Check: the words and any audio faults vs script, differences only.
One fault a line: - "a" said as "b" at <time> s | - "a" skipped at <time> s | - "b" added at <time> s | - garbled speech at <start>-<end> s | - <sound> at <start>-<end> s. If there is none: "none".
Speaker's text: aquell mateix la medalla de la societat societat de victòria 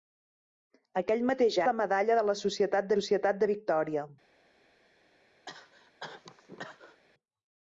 - cough at 5.5-7.0 s